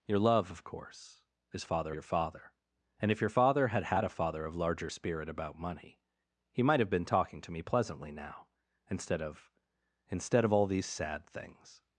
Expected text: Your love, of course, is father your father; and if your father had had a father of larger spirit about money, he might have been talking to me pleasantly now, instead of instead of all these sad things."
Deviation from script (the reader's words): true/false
false